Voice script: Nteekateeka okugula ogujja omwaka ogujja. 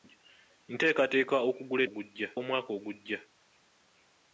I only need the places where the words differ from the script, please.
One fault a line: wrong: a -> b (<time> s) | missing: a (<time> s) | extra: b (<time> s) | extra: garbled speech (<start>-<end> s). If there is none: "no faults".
no faults